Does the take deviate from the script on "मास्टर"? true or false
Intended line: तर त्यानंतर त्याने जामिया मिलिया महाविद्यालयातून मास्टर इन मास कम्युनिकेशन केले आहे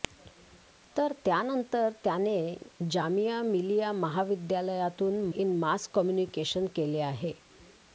true